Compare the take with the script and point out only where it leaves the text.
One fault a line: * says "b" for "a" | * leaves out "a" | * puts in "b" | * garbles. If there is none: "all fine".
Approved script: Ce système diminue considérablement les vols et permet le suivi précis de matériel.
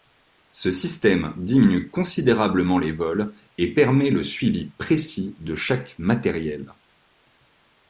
* puts in "chaque"